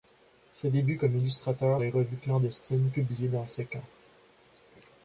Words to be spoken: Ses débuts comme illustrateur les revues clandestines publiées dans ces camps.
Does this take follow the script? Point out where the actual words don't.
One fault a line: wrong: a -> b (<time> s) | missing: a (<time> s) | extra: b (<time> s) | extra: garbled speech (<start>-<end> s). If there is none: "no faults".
no faults